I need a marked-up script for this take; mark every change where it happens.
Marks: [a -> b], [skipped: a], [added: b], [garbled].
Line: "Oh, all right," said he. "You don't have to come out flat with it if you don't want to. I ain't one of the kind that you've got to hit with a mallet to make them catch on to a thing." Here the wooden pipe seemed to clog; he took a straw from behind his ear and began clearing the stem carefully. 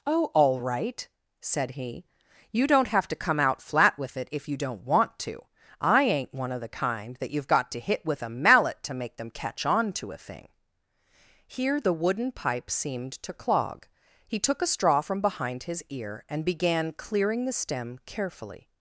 "Oh, all right," said he. "You don't have to come out flat with it if you don't want to. I ain't one of the kind that you've got to hit with a mallet to make them catch on to a thing." Here the wooden pipe seemed to clog; he took a straw from behind his ear and began clearing the stem carefully.